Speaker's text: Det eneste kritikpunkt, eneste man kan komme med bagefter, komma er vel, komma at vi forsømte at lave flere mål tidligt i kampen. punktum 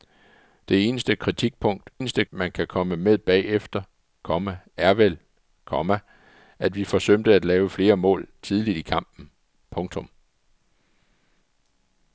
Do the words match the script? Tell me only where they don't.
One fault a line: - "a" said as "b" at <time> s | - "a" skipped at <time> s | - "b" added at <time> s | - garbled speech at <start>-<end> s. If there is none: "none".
none